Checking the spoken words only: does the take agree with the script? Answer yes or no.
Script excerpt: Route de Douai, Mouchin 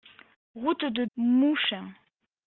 no